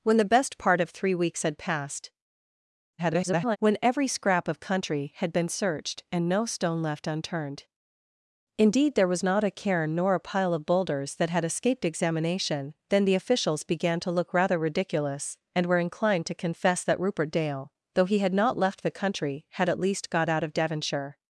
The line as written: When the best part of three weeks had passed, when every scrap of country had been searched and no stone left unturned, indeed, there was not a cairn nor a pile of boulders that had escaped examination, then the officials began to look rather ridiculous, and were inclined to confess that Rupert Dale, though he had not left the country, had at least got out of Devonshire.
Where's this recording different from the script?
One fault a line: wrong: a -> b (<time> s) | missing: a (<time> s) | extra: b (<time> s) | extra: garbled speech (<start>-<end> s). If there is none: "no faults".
extra: garbled speech (3.0-3.6 s)